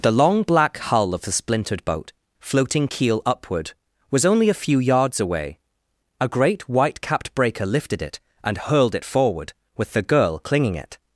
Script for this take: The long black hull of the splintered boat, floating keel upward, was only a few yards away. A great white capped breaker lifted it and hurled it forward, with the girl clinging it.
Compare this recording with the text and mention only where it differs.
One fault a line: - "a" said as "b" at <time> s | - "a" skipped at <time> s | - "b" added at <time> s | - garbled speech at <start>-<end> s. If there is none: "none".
none